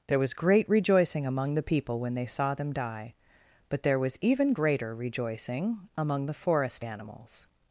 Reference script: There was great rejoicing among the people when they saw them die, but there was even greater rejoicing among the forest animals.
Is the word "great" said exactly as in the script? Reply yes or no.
yes